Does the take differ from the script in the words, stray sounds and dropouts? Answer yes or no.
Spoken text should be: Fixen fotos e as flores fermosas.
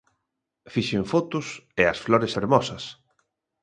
no